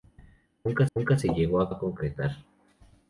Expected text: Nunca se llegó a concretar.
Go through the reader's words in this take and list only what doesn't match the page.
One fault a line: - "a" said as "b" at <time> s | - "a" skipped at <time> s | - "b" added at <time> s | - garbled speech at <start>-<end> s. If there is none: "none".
- "nunca" added at 0.9 s
- "a" added at 1.7 s